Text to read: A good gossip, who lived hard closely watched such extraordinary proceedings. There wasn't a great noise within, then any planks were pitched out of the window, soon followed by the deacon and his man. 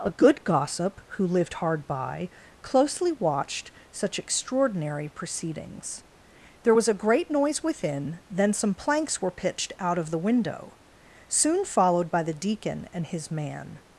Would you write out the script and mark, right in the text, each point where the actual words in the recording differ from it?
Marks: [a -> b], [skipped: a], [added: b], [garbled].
A good gossip, who lived hard [added: by] closely watched such extraordinary proceedings. There [wasn't -> was] a great noise within, then [any -> some] planks were pitched out of the window, soon followed by the deacon and his man.